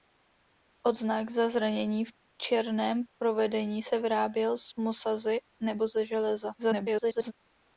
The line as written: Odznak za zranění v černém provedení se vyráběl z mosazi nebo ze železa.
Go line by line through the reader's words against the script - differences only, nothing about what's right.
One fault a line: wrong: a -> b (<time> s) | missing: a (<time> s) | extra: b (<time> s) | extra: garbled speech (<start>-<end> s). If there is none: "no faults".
extra: garbled speech (6.6-7.3 s)